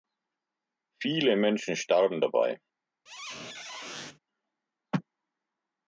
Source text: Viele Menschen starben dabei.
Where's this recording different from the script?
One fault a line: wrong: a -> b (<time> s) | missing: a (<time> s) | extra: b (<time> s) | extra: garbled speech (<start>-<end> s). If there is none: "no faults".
no faults